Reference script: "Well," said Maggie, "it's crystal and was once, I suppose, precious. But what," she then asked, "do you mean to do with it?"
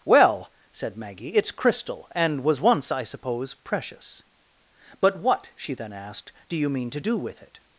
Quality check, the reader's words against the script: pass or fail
pass